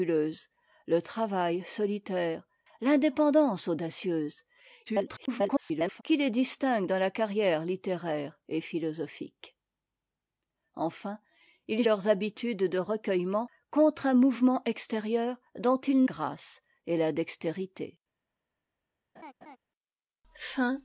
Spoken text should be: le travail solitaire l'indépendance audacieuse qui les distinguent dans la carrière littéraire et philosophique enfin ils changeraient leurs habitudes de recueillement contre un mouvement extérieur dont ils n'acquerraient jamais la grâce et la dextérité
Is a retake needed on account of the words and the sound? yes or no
yes